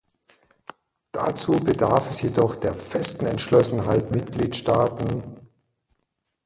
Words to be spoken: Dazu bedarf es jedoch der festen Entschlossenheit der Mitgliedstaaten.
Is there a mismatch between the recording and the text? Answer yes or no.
yes